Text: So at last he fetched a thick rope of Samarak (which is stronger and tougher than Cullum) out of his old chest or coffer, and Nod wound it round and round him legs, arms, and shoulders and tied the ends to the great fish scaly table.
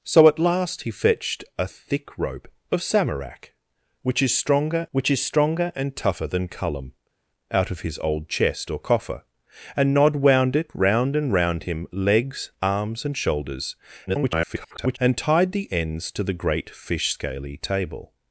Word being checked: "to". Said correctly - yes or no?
yes